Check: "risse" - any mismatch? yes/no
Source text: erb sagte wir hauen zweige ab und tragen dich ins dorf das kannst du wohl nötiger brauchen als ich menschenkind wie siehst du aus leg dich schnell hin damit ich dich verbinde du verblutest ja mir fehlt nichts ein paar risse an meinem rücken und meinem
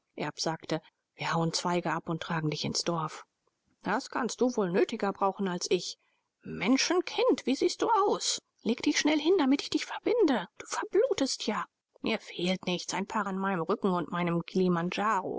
yes